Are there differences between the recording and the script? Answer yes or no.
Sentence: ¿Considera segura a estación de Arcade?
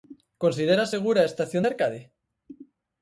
no